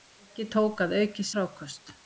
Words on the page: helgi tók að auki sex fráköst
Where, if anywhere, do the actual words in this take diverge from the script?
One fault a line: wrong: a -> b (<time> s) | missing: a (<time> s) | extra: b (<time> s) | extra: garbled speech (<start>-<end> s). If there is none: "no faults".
missing: sex (1.3 s)